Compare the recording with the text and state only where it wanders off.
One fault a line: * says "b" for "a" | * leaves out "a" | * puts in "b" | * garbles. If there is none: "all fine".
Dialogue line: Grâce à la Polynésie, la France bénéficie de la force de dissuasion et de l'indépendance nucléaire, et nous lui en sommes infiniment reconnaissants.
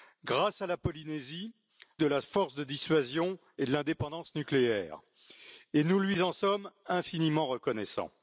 * leaves out "la France bénéficie"